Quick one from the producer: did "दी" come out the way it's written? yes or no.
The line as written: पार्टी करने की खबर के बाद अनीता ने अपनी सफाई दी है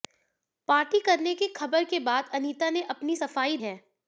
no